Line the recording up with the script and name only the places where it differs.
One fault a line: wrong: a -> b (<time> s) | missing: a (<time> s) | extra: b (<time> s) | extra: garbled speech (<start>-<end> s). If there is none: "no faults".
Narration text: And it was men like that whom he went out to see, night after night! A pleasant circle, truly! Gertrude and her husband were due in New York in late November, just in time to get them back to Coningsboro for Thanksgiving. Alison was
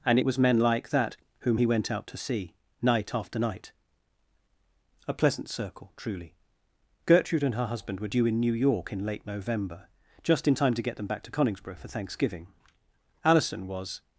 no faults